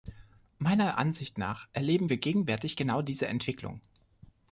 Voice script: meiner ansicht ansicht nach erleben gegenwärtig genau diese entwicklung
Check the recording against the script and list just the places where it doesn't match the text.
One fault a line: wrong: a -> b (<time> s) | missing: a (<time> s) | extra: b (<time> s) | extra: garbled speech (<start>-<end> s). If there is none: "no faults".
missing: ansicht (1.4 s)
extra: wir (2.1 s)